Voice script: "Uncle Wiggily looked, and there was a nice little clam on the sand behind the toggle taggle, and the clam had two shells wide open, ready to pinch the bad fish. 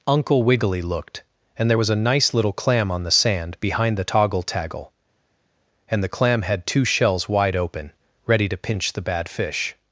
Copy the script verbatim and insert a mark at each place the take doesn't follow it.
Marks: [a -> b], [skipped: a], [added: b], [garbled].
"Uncle Wiggily looked, and there was a nice little clam on the sand behind the toggle taggle, and the clam had two shells wide open, ready to pinch the bad fish.